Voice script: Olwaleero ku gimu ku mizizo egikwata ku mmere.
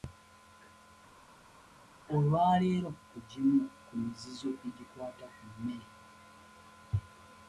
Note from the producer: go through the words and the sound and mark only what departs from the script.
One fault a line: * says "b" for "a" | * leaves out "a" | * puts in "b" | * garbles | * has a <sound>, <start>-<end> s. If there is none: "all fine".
all fine